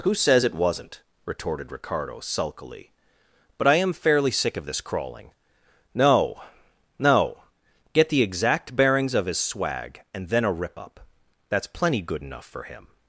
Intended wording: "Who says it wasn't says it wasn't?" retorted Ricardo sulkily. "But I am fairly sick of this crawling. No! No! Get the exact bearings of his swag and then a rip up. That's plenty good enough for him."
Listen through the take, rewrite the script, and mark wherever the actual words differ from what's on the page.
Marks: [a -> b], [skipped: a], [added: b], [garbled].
"Who says it wasn't [skipped: says it wasn't?"] retorted Ricardo sulkily. "But I am fairly sick of this crawling. No! No! Get the exact bearings of his swag and then a rip up. That's plenty good enough for him."